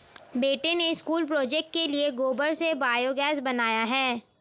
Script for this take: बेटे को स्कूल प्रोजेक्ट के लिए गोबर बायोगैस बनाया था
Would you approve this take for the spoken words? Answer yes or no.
no